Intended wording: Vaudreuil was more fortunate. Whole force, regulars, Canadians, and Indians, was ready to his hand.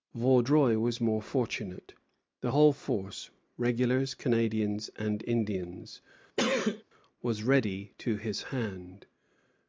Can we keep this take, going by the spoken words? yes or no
no